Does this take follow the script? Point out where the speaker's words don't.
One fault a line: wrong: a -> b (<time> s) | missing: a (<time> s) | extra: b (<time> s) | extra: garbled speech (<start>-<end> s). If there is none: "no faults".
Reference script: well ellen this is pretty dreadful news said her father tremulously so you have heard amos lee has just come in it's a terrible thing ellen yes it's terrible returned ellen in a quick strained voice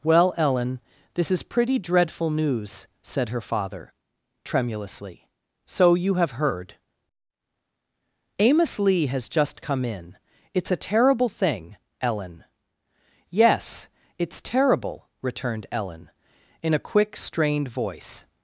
no faults